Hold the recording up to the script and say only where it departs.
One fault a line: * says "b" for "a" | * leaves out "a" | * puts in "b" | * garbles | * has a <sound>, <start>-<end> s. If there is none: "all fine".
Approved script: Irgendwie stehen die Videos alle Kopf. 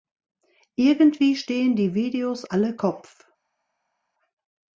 all fine